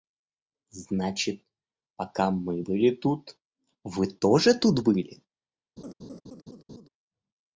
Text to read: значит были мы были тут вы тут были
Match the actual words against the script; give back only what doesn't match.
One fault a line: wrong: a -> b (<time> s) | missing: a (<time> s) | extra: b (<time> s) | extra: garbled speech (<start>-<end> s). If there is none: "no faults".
wrong: были -> пока (1.9 s)
extra: тоже (4.1 s)